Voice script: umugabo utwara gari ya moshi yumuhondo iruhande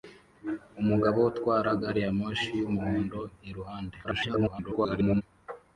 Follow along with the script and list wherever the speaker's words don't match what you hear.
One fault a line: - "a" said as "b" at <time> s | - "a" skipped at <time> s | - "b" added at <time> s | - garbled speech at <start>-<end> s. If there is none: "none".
- garbled speech at 4.0-5.2 s